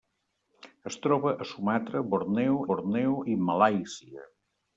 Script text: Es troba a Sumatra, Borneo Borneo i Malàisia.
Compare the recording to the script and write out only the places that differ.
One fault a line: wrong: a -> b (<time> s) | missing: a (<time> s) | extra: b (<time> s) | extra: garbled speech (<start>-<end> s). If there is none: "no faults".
no faults